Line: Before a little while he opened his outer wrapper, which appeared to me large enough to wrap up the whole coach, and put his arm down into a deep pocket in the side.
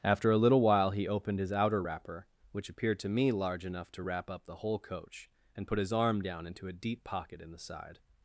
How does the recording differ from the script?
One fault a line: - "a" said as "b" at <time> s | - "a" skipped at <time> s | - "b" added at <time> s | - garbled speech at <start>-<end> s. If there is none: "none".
- "Before" said as "After" at 0.0 s